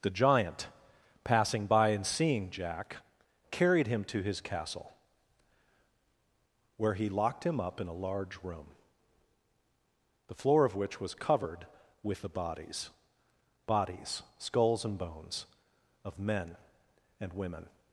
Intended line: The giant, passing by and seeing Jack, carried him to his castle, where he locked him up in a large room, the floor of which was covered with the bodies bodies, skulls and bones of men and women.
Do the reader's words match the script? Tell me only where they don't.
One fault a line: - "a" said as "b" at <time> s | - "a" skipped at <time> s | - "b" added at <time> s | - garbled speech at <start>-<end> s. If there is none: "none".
none